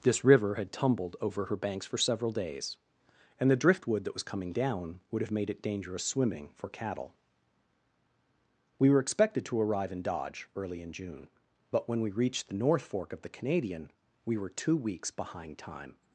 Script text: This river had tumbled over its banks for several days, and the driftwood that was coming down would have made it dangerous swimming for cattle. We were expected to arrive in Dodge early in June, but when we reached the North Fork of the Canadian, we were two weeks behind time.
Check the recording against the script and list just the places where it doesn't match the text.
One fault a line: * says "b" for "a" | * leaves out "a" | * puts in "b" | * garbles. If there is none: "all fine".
* says "her" for "its"